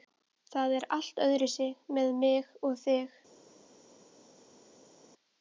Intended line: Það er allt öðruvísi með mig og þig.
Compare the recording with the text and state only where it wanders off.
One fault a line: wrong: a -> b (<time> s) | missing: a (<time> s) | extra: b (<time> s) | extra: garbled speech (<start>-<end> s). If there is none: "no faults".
no faults